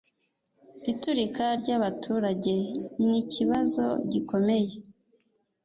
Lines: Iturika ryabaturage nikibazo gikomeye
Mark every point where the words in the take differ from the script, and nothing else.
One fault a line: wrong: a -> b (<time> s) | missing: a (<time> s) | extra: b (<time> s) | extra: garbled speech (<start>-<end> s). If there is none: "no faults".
no faults